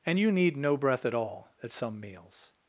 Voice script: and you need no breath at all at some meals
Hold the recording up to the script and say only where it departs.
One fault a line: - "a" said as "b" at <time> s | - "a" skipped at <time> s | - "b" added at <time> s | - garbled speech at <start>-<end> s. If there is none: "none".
none